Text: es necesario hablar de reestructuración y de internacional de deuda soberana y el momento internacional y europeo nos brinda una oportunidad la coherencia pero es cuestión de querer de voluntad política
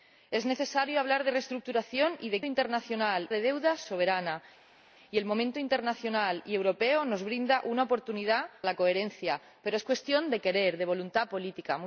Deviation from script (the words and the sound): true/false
false